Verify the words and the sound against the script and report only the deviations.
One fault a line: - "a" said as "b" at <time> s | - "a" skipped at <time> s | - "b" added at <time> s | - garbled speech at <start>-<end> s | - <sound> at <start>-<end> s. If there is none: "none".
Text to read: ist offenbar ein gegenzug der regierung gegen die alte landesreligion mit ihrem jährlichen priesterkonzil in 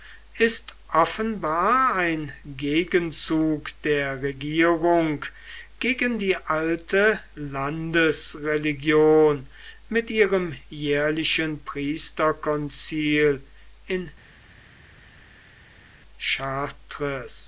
none